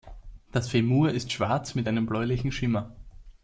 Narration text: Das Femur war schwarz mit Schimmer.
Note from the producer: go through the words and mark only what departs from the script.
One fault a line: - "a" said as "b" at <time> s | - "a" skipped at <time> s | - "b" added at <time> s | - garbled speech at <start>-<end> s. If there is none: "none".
- "war" said as "ist" at 1.1 s
- "einem bläulichen" added at 1.9 s